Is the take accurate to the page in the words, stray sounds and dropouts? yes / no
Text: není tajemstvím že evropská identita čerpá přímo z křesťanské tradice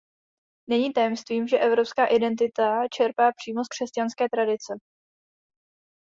yes